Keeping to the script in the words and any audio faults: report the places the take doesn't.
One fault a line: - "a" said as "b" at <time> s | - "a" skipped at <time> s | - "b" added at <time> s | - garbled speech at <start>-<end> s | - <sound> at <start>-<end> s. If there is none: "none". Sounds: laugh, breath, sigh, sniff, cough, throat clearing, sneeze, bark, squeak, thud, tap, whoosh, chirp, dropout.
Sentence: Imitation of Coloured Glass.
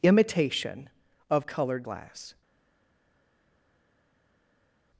none